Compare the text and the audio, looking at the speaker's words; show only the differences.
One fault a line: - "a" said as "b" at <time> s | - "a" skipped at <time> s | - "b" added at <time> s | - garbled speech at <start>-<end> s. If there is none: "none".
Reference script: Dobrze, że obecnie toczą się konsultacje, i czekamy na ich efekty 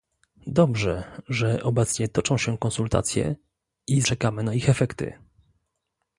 none